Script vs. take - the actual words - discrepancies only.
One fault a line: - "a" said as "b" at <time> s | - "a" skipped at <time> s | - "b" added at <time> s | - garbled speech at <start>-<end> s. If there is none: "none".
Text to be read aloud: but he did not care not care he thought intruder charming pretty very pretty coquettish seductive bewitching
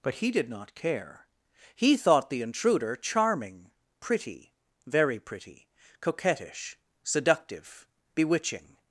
- "not care" skipped at 1.3 s
- "the" added at 2.3 s